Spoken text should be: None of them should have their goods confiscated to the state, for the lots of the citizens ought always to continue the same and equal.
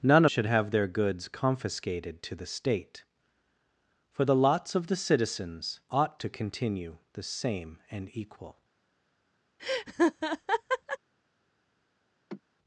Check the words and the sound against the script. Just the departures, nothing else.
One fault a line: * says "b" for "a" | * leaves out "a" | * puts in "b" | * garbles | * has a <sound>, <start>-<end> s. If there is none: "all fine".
* leaves out "of them"
* leaves out "always"
* has a laugh, 9.6-11.0 s
* has a sigh, 12.3-12.4 s